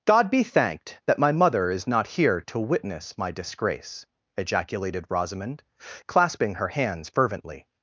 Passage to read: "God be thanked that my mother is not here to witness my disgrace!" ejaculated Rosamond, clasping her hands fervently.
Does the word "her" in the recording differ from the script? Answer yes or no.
no